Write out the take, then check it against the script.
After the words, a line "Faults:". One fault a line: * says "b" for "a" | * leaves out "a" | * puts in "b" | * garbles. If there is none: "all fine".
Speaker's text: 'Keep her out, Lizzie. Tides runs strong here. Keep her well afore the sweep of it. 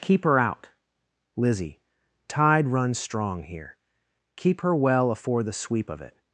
'Keep her out, Lizzie. Tide runs strong here. Keep her well afore the sweep of it.
Faults:
* says "Tide" for "Tides"